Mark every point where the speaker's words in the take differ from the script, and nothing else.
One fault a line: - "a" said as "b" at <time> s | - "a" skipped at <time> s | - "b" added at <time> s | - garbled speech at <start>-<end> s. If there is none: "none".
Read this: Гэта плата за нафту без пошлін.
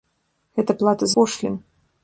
- "за нафту без" skipped at 1.1 s